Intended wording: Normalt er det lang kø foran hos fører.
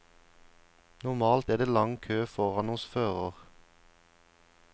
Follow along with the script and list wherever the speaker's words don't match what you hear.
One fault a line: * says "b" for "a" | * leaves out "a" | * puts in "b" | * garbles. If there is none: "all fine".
all fine